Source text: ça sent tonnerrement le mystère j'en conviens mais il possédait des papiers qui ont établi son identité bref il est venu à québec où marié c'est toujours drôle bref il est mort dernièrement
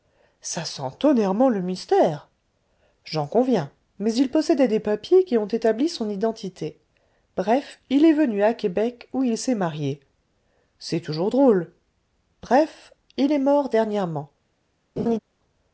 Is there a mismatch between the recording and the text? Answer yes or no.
yes